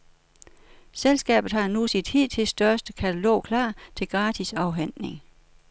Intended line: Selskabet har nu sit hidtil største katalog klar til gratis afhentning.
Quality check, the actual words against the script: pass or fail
pass